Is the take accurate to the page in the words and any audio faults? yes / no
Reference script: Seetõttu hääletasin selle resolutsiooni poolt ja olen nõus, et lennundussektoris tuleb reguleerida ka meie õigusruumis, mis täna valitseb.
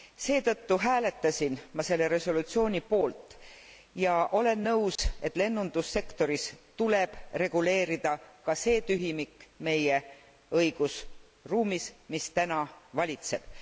no